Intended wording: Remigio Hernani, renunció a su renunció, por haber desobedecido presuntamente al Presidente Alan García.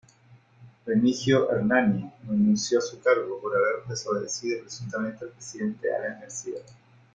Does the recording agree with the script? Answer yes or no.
no